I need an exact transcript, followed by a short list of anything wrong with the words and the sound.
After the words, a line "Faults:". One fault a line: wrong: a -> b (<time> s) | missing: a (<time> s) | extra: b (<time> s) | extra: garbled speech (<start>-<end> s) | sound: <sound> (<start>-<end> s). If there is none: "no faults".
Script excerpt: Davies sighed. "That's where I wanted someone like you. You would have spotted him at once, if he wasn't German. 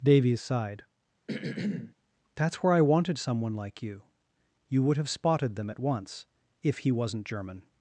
Davies sighed. "That's where I wanted someone like you. You would have spotted them at once, if he wasn't German.
Faults:
sound: throat clearing (1.3-1.9 s)
wrong: him -> them (5.6 s)